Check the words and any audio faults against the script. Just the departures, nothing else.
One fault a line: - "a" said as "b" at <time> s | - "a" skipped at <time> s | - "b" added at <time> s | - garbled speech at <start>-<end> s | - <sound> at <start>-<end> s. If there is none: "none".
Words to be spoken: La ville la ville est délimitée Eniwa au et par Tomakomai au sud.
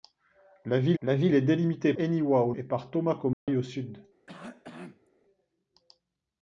- dropout at 3.3-3.5 s
- cough at 4.3-5.1 s